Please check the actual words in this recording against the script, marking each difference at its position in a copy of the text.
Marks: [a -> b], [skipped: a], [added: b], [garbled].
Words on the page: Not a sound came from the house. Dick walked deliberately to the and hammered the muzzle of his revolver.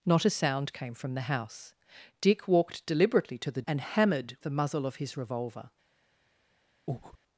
Not a sound came from the house. Dick walked deliberately to the and hammered the muzzle of his revolver.